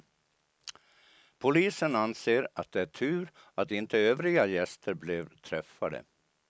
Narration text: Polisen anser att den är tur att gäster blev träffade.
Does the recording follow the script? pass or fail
fail